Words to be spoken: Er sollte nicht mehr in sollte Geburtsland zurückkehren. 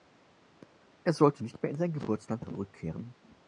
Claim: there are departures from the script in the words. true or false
true